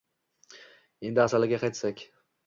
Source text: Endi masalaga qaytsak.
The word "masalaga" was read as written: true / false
true